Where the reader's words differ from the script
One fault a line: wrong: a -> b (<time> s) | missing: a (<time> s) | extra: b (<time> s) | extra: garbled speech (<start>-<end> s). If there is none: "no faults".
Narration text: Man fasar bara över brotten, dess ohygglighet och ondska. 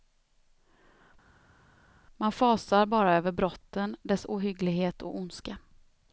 no faults